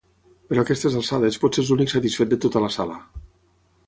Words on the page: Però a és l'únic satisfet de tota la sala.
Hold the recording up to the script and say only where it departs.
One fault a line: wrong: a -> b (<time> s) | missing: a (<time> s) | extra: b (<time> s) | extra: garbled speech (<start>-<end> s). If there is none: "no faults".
extra: aquestes alçades potser (0.7 s)